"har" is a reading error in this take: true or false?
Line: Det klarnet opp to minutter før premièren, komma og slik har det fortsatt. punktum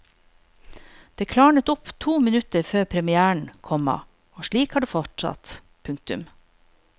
false